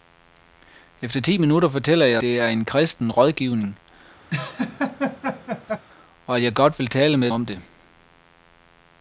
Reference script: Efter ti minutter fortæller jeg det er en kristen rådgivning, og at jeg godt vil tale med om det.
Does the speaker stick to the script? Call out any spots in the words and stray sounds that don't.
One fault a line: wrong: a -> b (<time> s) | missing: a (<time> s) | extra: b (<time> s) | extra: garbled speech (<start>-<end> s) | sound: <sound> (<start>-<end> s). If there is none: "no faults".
sound: laugh (4.3-5.8 s)